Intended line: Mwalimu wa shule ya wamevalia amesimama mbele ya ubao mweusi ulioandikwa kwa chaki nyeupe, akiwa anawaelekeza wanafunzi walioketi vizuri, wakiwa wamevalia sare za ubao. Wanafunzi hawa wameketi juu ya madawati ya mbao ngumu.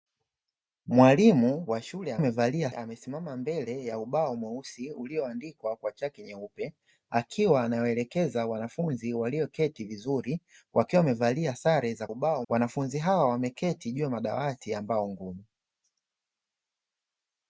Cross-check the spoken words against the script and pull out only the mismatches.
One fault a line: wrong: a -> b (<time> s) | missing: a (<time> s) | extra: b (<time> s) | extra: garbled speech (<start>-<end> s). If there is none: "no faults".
no faults